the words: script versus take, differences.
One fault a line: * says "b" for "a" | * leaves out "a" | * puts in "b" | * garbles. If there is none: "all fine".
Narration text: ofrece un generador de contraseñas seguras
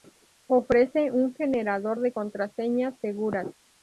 all fine